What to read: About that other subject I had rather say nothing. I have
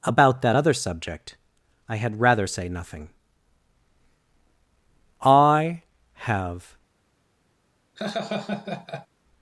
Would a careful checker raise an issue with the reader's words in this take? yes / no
no